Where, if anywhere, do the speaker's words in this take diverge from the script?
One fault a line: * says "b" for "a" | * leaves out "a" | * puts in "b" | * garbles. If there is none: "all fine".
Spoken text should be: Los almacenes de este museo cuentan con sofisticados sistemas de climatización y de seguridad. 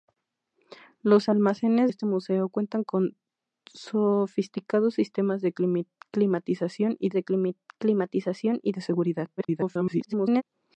* leaves out "de"
* puts in "climatización y de"
* garbles